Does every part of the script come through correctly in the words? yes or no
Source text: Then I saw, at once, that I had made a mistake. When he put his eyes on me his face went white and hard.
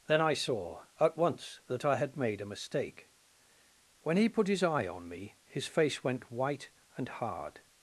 no